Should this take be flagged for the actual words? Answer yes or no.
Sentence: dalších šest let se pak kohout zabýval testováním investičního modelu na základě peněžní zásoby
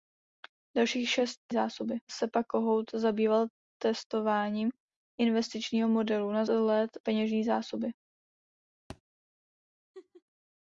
yes